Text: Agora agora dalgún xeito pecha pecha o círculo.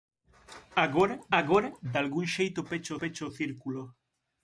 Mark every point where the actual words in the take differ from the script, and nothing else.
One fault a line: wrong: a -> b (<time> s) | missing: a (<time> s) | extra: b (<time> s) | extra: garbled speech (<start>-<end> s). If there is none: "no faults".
no faults